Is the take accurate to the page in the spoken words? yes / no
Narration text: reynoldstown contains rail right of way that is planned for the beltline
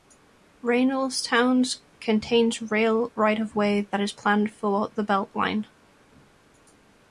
yes